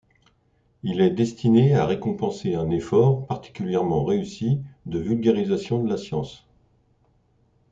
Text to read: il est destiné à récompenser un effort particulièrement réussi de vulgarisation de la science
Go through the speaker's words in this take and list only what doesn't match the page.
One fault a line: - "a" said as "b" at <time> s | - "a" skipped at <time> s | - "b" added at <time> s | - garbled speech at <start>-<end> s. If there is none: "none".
none